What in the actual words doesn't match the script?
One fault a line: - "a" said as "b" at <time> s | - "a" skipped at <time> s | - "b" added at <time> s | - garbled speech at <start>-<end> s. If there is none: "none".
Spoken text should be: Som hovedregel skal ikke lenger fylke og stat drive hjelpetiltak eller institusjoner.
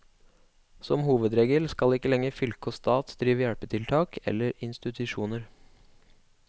none